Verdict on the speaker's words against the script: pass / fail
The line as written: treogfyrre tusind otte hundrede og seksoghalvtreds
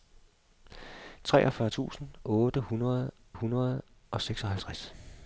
fail